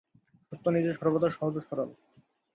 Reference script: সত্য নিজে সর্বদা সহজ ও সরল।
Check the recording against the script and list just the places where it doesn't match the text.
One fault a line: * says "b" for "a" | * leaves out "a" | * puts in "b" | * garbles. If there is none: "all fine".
all fine